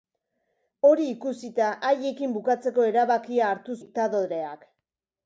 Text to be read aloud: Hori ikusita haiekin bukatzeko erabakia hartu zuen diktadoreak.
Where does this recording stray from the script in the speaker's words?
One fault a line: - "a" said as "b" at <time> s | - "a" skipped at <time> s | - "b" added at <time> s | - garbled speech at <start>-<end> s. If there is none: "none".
- "zuen" skipped at 3.8 s